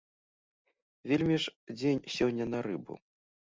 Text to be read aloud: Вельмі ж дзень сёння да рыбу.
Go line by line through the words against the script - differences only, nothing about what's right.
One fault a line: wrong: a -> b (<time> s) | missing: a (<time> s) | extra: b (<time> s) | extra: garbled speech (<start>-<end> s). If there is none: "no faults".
wrong: да -> на (2.5 s)